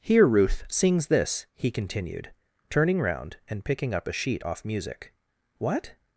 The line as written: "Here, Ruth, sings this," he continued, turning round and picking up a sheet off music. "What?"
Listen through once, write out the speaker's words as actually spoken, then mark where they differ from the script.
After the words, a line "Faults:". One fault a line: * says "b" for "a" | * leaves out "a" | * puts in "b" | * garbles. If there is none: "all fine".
"Here, Ruth, sings this," he continued, turning round and picking up a sheet off music. "What?"
Faults:
all fine